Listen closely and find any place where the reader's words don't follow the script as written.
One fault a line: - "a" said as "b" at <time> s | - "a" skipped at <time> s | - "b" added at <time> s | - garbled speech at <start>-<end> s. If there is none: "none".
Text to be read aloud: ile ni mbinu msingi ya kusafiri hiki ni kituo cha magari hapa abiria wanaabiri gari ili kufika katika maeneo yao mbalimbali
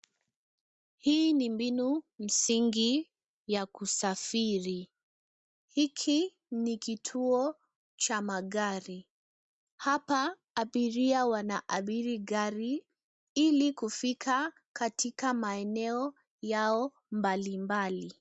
- "ile" said as "hii" at 1.0 s